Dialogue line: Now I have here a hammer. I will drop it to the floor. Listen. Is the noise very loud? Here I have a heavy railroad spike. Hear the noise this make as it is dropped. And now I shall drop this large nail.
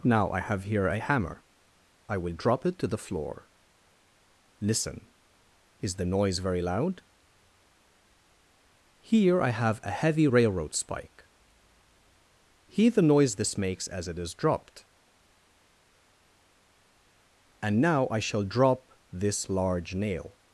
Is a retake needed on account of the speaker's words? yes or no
yes